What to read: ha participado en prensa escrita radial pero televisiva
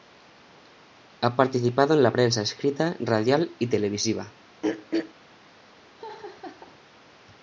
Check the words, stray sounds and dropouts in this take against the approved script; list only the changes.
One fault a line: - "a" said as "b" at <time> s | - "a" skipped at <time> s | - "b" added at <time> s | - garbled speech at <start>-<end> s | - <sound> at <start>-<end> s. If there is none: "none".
- "la" added at 2.0 s
- "pero" said as "y" at 3.6 s
- throat clearing at 4.6-5.1 s
- laugh at 6.0-6.8 s